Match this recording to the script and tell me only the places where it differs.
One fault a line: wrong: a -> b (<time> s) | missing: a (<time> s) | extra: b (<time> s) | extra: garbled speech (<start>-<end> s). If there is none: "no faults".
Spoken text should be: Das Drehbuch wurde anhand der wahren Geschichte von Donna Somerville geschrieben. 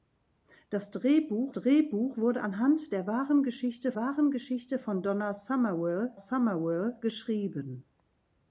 extra: Drehbuch (1.5 s)
extra: wahren Geschichte (3.9 s)
extra: Somerville (6.1 s)